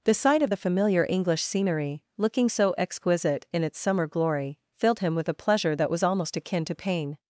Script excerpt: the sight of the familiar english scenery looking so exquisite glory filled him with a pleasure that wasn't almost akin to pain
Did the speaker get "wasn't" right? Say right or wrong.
wrong